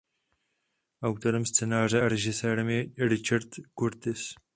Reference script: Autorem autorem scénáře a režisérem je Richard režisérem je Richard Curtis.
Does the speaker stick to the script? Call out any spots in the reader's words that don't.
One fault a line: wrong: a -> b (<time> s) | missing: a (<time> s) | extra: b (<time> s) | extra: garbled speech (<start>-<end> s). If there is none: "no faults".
missing: autorem (1.4 s)
missing: režisérem je Richard (3.5 s)